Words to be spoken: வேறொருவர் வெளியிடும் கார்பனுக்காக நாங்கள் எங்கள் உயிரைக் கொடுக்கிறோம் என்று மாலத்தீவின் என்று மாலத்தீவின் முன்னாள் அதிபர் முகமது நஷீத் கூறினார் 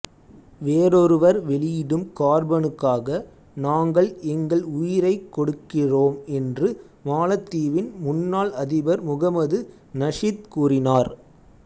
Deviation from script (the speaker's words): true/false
true